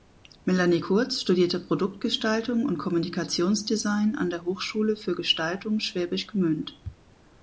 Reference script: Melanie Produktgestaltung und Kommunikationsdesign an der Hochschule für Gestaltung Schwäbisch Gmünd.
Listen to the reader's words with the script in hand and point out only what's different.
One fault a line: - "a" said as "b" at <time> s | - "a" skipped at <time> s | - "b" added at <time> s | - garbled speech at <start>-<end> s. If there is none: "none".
- "Kurz studierte" added at 0.8 s